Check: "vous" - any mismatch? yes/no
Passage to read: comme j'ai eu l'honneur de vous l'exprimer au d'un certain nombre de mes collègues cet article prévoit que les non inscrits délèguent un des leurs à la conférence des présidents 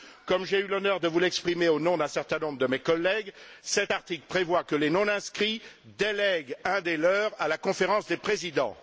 no